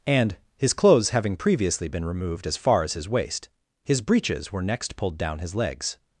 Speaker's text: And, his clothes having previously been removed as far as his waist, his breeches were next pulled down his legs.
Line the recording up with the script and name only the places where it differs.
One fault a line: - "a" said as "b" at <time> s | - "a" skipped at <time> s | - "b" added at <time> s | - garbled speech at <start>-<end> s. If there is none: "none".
none